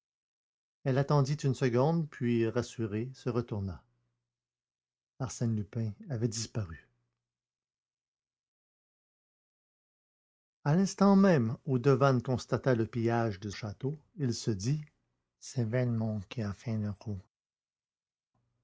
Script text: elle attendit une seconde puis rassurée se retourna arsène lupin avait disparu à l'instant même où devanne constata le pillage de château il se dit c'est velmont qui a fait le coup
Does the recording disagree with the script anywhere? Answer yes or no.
no